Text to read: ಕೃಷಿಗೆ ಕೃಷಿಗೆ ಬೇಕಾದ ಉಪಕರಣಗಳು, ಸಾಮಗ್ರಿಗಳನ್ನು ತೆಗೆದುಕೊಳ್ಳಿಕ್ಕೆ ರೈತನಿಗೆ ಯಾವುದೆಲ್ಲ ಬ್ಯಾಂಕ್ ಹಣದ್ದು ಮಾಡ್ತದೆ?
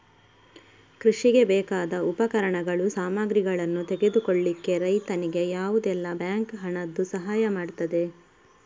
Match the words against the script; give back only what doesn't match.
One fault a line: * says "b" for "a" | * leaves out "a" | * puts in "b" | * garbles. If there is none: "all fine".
* leaves out "ಕೃಷಿಗೆ"
* puts in "ಸಹಾಯ"